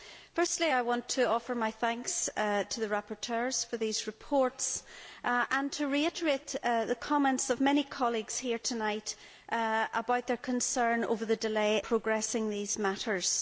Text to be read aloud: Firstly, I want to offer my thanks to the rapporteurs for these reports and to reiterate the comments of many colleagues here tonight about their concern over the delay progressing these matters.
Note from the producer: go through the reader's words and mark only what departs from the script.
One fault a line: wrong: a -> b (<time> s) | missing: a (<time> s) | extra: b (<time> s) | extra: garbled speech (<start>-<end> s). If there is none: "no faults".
no faults